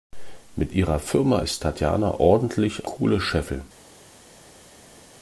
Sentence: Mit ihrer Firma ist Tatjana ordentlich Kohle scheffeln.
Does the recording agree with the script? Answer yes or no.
yes